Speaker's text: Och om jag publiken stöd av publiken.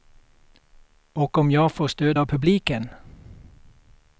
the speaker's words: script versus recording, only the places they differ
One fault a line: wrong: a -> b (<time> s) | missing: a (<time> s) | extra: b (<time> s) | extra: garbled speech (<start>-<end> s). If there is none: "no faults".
wrong: publiken -> får (1.7 s)